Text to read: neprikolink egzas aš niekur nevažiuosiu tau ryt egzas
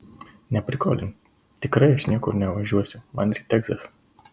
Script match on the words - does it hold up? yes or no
no